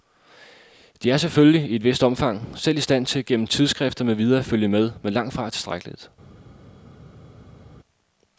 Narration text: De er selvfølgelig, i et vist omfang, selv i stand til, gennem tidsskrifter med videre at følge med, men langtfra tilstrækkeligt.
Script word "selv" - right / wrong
right